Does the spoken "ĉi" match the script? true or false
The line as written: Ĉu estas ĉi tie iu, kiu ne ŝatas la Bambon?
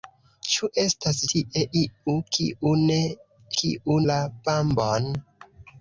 false